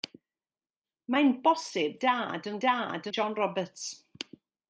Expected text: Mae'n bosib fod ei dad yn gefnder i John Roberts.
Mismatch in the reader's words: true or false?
true